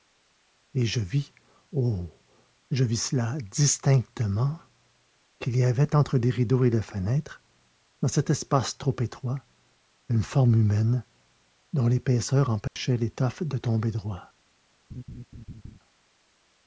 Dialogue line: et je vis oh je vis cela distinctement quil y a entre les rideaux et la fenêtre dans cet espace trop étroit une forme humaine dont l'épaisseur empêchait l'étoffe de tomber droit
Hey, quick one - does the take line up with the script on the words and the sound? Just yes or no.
no